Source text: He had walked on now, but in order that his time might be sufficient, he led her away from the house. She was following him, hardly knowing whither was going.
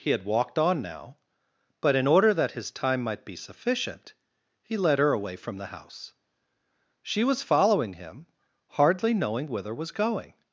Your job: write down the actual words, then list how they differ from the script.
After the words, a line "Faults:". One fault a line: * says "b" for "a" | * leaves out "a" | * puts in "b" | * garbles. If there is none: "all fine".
He had walked on now, but in order that his time might be sufficient, he led her away from the house. She was following him, hardly knowing whither was going.
Faults:
all fine